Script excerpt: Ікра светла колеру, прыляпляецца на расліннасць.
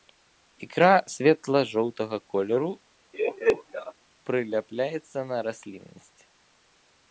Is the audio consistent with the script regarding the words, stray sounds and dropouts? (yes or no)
no